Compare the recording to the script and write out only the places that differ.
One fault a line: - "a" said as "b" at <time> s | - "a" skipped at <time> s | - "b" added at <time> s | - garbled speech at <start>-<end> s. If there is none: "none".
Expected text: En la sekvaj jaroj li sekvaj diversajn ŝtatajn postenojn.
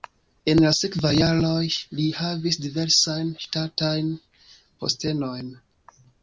- "sekvaj" said as "havis" at 2.2 s